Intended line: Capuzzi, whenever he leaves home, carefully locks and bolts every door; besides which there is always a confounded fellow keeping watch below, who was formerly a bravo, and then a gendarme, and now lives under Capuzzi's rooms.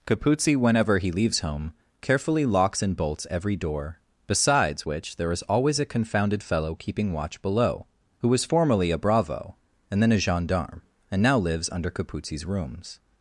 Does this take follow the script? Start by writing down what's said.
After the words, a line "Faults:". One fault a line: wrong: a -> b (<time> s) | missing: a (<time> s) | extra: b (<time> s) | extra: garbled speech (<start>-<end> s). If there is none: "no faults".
Capuzzi, whenever he leaves home, carefully locks and bolts every door; besides which there is always a confounded fellow keeping watch below, who was formerly a bravo, and then a gendarme, and now lives under Capuzzi's rooms.
Faults:
no faults